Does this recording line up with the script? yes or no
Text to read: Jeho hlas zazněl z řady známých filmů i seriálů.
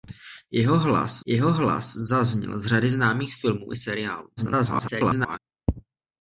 no